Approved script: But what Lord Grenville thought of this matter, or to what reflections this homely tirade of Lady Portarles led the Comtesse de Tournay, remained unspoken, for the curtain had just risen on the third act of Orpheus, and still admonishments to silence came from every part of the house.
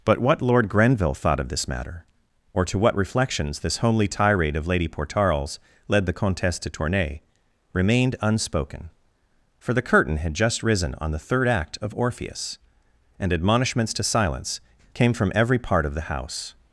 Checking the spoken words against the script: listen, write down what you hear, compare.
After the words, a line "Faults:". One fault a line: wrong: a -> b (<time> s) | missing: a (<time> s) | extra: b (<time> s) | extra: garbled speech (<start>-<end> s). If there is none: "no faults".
But what Lord Grenville thought of this matter, or to what reflections this homely tirade of Lady Portarles led the Comtesse de Tournay, remained unspoken, for the curtain had just risen on the third act of Orpheus, and admonishments to silence came from every part of the house.
Faults:
missing: still (13.3 s)